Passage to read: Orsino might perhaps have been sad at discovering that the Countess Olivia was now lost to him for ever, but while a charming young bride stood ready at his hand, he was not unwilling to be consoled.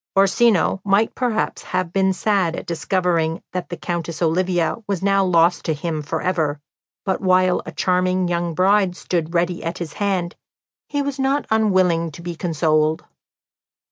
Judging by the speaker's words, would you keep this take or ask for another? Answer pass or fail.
pass